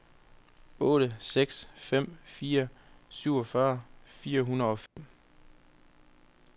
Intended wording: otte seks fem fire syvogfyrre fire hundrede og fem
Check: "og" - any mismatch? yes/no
no